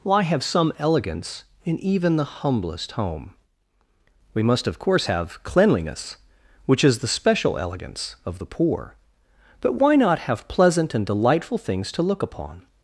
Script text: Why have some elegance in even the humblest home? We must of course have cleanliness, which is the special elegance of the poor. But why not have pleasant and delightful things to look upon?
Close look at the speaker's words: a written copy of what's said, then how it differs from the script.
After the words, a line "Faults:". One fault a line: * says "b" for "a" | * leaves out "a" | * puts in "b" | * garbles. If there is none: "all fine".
Why have some elegance in even the humblest home? We must of course have cleanliness, which is the special elegance of the poor. But why not have pleasant and delightful things to look upon?
Faults:
all fine